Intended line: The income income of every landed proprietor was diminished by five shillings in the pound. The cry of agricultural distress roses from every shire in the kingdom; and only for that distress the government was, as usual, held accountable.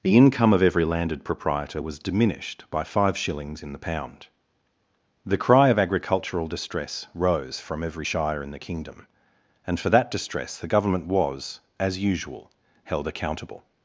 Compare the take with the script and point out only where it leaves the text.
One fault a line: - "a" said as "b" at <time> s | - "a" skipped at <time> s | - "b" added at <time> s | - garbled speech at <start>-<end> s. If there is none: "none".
- "income" skipped at 0.5 s
- "roses" said as "rose" at 7.1 s
- "only" skipped at 9.8 s